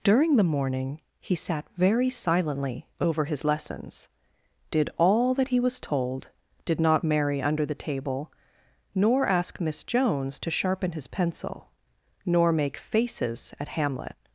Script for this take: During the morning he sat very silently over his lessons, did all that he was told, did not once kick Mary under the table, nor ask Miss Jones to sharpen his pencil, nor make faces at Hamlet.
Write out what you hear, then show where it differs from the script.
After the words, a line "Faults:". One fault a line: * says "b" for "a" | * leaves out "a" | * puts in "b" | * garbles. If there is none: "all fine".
During the morning he sat very silently over his lessons, did all that he was told, did not Mary under the table, nor ask Miss Jones to sharpen his pencil, nor make faces at Hamlet.
Faults:
* leaves out "once kick"